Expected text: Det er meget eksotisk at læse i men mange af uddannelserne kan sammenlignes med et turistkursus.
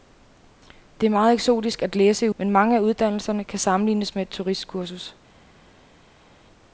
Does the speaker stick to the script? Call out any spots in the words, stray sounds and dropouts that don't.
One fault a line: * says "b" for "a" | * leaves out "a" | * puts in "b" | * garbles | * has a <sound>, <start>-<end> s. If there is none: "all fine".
all fine